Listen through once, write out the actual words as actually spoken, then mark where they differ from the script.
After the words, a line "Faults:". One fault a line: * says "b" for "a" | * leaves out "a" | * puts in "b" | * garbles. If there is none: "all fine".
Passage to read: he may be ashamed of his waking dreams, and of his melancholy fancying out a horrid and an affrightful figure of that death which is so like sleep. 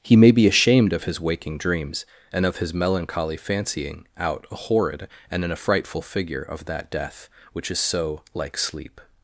he may be ashamed of his waking dreams, and of his melancholy fancying out a horrid and an affrightful figure of that death which is so like sleep.
Faults:
all fine